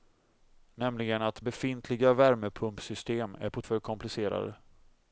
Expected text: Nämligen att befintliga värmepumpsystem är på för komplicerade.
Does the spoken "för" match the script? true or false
true